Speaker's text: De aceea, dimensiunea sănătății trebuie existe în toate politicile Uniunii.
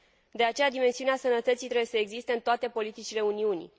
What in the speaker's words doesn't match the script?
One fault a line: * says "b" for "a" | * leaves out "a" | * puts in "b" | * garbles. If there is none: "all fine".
* puts in "să"